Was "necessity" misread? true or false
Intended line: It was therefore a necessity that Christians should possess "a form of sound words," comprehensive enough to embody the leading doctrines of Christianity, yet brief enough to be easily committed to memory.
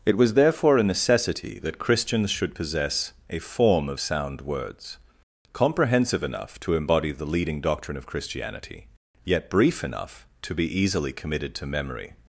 false